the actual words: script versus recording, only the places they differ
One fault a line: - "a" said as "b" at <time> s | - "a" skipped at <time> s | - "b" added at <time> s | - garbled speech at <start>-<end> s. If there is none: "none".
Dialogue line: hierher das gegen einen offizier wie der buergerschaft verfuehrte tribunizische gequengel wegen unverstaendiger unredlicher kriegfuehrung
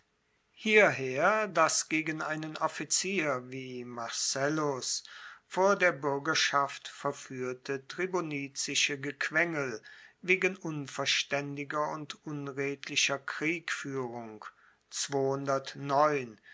- "marcellus vor" added at 3.8 s
- "und" added at 11.9 s